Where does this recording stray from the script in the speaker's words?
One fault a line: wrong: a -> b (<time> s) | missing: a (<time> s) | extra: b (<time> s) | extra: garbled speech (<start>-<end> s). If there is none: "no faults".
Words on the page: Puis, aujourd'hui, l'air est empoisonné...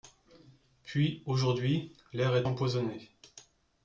no faults